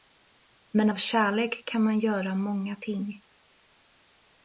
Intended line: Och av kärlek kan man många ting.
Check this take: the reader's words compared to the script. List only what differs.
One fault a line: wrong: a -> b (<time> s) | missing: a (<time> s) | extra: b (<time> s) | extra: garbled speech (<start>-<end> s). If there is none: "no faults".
wrong: Och -> Men (0.7 s)
extra: göra (2.0 s)